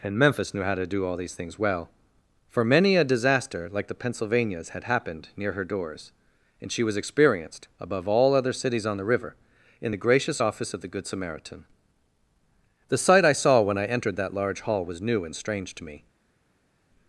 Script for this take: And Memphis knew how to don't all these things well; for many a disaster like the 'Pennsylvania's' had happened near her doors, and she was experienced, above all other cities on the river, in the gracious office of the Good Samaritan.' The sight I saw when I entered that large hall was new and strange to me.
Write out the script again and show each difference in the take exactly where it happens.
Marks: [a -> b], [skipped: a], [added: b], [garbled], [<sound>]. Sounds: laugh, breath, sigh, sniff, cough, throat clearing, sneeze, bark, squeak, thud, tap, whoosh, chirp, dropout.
And Memphis knew how to [don't -> do] all these things well; for many a disaster like the 'Pennsylvania's' had happened near her doors, and she was experienced, above all other cities on the river, in the gracious office of the Good Samaritan.' The sight I saw when I entered that large hall was new and strange to me.